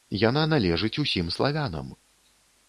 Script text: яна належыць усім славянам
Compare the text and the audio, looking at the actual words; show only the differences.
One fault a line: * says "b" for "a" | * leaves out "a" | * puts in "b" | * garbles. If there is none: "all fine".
all fine